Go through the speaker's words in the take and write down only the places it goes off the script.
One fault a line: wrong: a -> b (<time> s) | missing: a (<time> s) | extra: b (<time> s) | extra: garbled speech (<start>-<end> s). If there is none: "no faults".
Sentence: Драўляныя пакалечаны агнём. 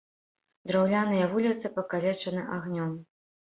extra: вуліцы (1.3 s)